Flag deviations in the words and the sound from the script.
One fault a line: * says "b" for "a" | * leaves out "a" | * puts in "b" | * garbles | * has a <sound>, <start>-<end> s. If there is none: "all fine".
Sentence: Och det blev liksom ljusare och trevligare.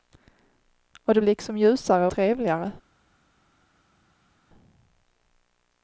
* leaves out "blev"
* leaves out "och"